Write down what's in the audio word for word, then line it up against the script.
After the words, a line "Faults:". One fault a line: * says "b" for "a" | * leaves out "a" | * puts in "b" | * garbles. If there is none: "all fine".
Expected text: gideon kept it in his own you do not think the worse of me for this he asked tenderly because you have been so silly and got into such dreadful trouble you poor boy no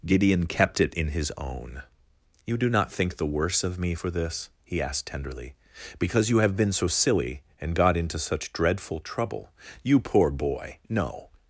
gideon kept it in his own you do not think the worse of me for this he asked tenderly because you have been so silly and got into such dreadful trouble you poor boy no
Faults:
all fine